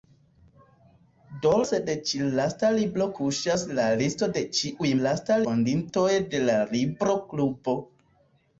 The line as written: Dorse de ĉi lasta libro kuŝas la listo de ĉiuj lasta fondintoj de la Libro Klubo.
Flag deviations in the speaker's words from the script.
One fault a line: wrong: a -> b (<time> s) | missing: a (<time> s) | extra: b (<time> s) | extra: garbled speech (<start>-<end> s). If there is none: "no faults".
no faults